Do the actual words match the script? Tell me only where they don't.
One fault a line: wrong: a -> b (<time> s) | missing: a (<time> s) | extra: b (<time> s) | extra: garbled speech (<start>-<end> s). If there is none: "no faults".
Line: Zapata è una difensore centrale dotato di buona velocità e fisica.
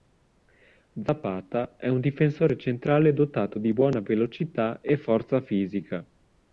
wrong: una -> un (1.9 s)
extra: forza (5.0 s)